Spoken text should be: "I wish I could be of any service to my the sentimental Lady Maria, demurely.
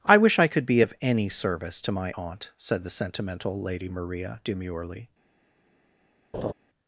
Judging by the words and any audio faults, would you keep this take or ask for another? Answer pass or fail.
fail